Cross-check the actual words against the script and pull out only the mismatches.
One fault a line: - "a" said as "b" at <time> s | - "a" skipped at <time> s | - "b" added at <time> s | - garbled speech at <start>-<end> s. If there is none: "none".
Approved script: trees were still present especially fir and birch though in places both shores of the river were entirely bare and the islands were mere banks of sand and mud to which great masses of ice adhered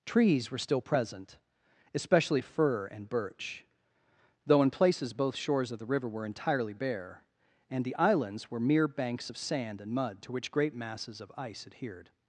none